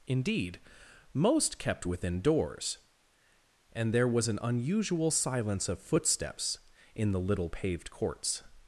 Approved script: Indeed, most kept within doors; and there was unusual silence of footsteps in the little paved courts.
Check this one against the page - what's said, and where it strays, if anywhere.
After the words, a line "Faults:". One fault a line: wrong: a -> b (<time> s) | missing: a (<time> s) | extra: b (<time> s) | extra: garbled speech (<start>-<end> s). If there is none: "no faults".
Indeed, most kept within doors; and there was an unusual silence of footsteps in the little paved courts.
Faults:
extra: an (4.3 s)